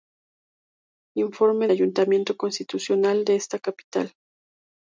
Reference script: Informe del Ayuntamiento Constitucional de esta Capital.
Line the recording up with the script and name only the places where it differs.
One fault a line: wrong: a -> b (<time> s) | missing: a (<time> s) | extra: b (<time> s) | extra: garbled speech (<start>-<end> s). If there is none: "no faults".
missing: del (1.7 s)